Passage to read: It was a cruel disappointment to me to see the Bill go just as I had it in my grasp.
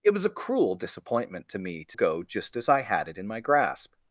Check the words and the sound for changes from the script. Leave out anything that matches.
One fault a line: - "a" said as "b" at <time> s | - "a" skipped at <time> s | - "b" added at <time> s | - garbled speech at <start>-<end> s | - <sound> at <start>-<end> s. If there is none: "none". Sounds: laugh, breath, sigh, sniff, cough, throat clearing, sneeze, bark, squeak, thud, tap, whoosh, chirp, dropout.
- "see the Bill" skipped at 2.0 s